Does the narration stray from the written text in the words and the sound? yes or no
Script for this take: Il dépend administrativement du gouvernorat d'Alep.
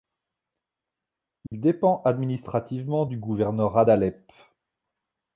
yes